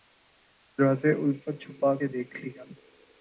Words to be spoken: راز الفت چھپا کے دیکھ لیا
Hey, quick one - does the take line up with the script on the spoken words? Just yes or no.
yes